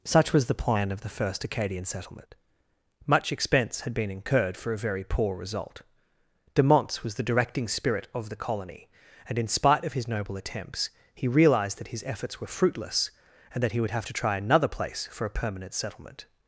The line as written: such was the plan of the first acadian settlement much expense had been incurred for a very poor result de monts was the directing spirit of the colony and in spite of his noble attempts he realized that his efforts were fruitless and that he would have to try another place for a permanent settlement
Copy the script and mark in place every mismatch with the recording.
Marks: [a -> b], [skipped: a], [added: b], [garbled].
such was the plan of the first acadian settlement much expense had been incurred for a very poor result de monts was the directing spirit of the colony and in spite of his noble attempts he realized that his efforts were fruitless and that he would have to try another place for a permanent settlement